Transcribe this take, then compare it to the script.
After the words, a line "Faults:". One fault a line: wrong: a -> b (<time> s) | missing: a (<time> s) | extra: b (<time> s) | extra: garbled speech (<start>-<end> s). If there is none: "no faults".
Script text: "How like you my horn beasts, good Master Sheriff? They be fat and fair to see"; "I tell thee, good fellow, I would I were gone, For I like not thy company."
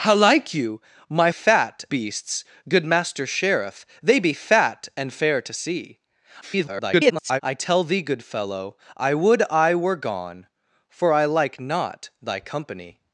"How like you my fat beasts, good Master Sheriff? They be fat and fair to see"; [garbled] "I tell thee, good fellow, I would I were gone, For I like not thy company."
Faults:
wrong: horn -> fat (1.3 s)
extra: garbled speech (6.4-7.4 s)